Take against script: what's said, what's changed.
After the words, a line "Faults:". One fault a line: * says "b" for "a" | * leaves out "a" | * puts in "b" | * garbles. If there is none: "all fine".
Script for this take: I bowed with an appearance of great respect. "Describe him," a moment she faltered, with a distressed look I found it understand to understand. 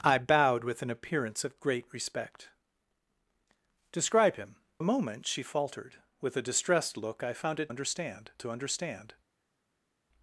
I bowed with an appearance of great respect. "Describe him," a moment she faltered, with a distressed look I found it understand to understand.
Faults:
all fine